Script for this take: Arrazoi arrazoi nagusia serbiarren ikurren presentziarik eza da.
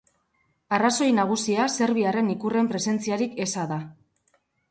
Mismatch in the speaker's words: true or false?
true